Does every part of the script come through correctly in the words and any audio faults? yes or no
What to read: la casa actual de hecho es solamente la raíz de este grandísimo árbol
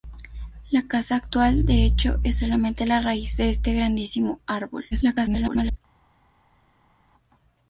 no